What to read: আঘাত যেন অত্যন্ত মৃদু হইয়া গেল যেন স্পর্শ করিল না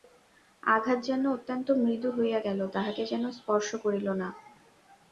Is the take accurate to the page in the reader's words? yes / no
no